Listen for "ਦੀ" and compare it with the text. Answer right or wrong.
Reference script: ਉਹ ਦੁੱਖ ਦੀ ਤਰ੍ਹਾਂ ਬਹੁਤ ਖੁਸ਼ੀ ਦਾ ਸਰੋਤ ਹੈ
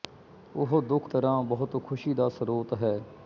wrong